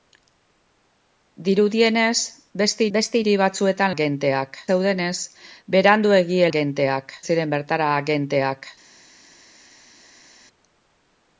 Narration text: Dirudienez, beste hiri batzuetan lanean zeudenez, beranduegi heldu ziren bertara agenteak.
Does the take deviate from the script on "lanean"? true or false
true